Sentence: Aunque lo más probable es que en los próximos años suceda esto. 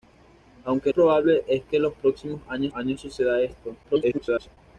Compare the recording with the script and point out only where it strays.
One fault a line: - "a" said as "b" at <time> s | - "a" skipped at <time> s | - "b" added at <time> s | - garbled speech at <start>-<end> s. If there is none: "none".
- "lo más" skipped at 0.9 s
- "años" added at 2.7 s
- garbled speech at 3.8-4.6 s